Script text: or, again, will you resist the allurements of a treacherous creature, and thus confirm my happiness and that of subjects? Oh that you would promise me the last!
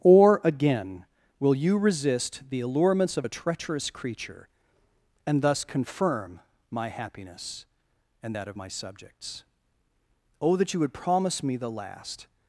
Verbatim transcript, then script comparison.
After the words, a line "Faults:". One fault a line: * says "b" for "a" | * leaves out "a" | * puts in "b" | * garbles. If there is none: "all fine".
or, again, will you resist the allurements of a treacherous creature, and thus confirm my happiness and that of my subjects? Oh that you would promise me the last!
Faults:
* puts in "my"